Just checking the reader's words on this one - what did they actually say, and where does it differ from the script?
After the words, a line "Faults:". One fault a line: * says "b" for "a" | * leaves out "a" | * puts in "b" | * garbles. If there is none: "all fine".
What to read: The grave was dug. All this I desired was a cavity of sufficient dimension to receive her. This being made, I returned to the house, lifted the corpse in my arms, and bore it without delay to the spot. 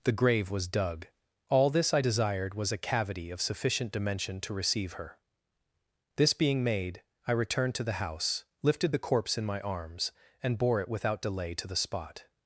The grave was dug. All this I desired was a cavity of sufficient dimension to receive her. This being made, I returned to the house, lifted the corpse in my arms, and bore it without delay to the spot.
Faults:
all fine